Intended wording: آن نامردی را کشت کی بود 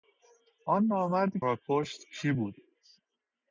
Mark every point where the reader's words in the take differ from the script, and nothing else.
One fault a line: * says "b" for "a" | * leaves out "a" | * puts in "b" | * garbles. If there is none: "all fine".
all fine